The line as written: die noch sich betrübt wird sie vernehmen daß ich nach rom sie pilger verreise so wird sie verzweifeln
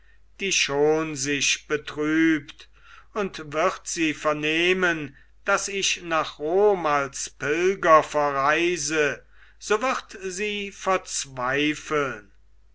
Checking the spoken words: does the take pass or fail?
fail